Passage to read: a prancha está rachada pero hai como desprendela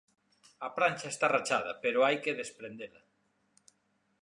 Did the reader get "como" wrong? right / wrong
wrong